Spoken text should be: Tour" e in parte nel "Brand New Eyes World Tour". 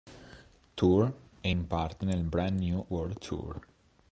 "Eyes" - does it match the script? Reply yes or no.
no